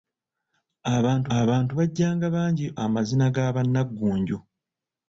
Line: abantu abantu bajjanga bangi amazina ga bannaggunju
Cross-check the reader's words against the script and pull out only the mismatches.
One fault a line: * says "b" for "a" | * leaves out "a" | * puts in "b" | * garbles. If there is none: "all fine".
all fine